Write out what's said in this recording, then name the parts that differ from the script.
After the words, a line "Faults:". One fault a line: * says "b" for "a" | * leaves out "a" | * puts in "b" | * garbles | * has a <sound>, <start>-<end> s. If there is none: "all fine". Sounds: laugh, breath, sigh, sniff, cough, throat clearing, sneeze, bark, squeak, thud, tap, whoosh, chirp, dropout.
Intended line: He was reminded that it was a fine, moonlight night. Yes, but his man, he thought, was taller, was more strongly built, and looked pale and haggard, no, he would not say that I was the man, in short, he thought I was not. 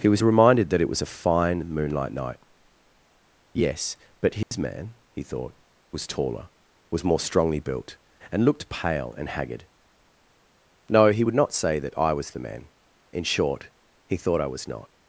He was reminded that it was a fine, moonlight night. Yes, but his man, he thought, was taller, was more strongly built, and looked pale and haggard, no, he would not say that I was the man, in short, he thought I was not.
Faults:
* has a dropout, 4.4-4.5 s